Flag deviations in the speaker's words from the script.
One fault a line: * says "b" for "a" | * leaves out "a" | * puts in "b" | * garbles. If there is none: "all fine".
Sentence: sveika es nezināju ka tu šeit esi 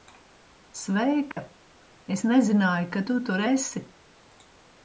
* says "tur" for "šeit"